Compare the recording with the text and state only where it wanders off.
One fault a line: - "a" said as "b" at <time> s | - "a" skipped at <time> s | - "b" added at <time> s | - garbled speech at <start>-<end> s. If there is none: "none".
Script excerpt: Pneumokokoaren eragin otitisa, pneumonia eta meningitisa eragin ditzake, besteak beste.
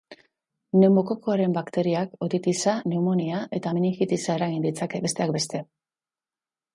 - "eragin" said as "bakteriak" at 1.6 s